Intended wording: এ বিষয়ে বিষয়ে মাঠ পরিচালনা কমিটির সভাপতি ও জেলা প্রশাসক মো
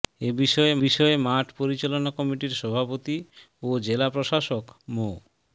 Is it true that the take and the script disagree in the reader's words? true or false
false